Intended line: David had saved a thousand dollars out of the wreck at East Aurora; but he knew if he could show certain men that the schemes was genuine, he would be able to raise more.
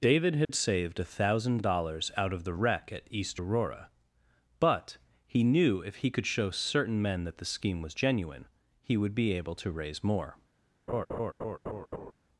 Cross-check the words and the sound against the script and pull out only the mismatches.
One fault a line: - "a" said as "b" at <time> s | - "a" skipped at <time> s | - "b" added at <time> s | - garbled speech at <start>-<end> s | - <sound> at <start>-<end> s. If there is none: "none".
- dropout at 0.4-0.5 s
- "schemes" said as "scheme" at 7.5 s
- laugh at 10.9-12.1 s